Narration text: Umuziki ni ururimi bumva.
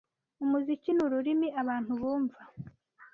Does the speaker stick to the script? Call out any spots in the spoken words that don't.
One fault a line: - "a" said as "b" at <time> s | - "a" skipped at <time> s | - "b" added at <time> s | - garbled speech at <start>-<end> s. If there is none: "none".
- "abantu" added at 1.6 s